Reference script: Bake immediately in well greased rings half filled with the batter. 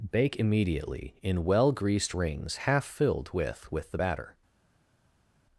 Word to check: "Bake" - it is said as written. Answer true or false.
true